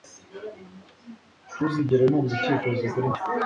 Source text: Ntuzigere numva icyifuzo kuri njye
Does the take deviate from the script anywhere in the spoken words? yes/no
no